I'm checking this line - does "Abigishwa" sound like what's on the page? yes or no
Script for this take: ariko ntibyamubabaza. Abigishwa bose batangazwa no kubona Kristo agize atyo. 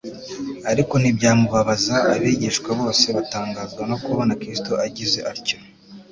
yes